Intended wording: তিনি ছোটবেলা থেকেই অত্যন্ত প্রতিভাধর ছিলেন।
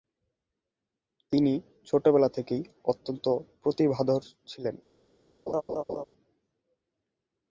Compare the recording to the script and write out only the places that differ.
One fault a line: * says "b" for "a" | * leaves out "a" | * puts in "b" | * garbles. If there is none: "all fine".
all fine